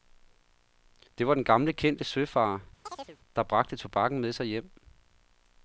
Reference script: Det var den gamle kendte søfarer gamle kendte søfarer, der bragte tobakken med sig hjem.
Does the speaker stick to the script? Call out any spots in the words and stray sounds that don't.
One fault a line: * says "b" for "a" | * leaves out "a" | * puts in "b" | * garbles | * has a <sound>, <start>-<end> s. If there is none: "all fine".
* leaves out "gamle kendte søfarer"
* has a chirp, 2.8-3.2 s